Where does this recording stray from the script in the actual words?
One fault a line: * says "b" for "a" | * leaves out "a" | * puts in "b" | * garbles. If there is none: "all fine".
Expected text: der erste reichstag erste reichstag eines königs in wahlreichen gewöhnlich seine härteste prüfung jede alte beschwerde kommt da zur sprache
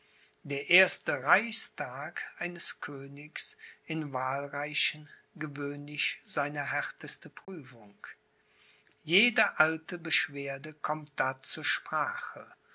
* leaves out "erste reichstag"